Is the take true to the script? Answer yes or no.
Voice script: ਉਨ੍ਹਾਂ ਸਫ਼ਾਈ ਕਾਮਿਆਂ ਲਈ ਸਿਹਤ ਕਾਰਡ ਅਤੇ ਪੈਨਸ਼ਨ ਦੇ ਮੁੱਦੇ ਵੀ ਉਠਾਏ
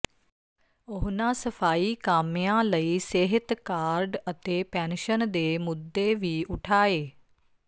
yes